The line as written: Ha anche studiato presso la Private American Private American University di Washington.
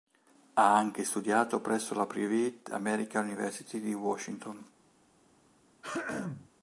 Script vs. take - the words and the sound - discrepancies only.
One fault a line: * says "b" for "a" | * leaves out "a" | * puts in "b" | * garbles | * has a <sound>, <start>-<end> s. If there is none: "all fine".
* leaves out "Private American"
* has a throat clearing, 5.8-6.5 s